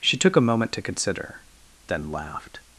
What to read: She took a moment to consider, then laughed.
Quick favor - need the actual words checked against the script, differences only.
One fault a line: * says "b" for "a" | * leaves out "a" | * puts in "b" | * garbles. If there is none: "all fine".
all fine